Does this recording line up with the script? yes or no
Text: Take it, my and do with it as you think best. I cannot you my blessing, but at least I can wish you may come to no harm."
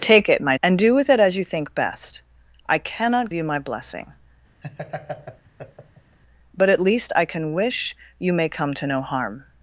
yes